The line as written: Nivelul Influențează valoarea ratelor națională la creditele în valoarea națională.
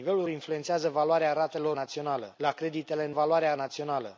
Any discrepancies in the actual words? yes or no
no